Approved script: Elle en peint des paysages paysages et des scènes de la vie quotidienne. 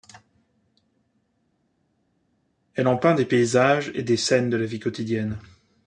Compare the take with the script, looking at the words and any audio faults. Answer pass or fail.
fail